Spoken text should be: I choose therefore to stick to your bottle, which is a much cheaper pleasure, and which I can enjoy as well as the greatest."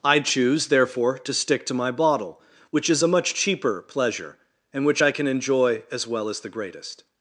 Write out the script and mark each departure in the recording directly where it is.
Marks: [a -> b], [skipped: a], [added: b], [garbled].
I choose therefore to stick to [your -> my] bottle, which is a much cheaper pleasure, and which I can enjoy as well as the greatest."